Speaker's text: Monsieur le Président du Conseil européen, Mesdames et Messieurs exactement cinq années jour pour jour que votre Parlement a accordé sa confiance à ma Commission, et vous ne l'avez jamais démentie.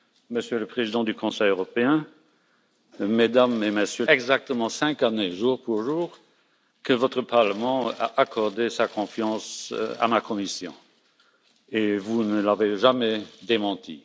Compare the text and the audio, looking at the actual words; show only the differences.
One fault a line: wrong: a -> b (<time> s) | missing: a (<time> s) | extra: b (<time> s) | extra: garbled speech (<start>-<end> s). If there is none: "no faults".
no faults